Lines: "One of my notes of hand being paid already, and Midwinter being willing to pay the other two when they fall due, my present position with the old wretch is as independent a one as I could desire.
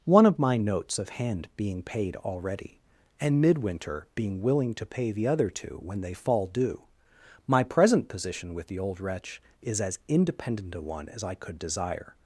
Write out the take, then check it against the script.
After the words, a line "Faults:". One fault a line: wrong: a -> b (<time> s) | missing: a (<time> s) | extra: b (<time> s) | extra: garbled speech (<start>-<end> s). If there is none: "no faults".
"One of my notes of hand being paid already, and Midwinter being willing to pay the other two when they fall due, my present position with the old wretch is as independent a one as I could desire.
Faults:
no faults